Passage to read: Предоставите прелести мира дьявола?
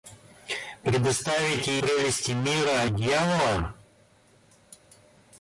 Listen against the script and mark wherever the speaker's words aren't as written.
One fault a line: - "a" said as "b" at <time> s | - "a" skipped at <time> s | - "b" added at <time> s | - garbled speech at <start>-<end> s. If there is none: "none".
none